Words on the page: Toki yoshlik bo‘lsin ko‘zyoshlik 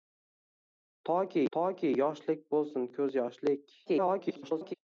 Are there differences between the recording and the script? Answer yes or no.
yes